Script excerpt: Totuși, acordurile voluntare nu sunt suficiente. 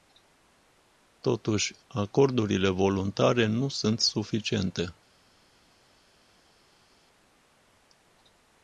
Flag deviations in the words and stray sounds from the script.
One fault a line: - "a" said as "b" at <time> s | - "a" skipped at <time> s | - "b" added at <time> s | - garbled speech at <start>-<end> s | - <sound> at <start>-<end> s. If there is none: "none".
none